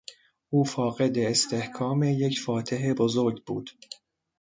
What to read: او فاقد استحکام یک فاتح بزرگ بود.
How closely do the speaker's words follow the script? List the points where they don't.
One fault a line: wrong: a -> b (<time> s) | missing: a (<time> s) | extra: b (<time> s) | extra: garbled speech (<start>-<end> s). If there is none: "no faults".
no faults